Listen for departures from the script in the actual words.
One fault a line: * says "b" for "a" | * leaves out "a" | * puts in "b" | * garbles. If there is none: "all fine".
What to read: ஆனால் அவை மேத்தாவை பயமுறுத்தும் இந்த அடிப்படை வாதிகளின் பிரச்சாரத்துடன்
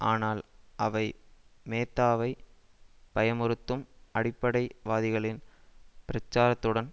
* leaves out "இந்த"